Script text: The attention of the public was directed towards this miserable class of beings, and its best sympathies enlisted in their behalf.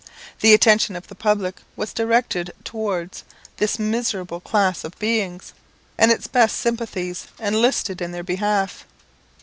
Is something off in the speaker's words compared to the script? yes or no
no